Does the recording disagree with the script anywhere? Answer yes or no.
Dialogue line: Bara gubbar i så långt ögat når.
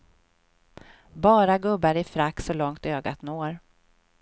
yes